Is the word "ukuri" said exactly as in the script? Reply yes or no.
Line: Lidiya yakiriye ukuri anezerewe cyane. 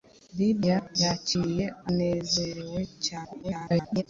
no